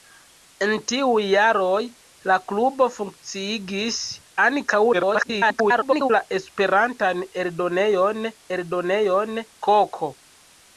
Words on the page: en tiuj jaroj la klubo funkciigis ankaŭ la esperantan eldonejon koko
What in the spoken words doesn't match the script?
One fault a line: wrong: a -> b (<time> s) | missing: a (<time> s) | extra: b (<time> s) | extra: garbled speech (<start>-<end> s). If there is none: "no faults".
extra: garbled speech (4.9-6.1 s)
extra: eldonejon (8.6 s)